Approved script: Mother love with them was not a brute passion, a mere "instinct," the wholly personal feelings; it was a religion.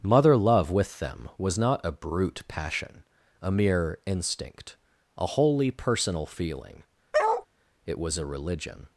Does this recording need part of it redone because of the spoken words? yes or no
yes